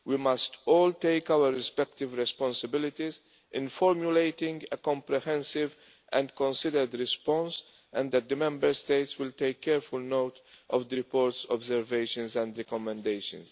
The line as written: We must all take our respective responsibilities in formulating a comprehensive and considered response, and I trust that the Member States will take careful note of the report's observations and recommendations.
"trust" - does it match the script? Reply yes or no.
no